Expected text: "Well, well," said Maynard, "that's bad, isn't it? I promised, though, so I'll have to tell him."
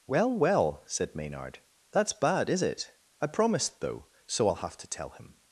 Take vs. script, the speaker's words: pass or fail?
fail